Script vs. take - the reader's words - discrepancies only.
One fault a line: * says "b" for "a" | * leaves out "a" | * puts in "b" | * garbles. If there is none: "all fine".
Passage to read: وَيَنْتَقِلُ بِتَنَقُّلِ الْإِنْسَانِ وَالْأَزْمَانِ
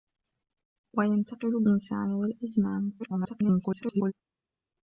* leaves out "بِتَنَقُّلِ"
* garbles